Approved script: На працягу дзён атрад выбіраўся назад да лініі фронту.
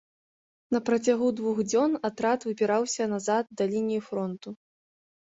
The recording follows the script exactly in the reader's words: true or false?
false